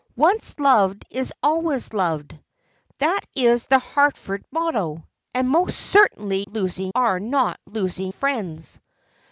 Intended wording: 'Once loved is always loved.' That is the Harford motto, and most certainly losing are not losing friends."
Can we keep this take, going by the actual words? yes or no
yes